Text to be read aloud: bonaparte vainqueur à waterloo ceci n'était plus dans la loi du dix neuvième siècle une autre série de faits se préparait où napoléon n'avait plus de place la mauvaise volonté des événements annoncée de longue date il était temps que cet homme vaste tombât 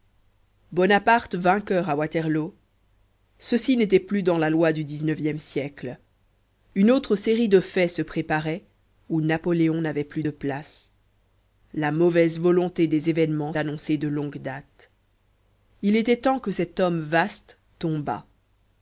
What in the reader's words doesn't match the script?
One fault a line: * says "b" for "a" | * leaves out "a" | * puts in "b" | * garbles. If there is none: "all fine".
all fine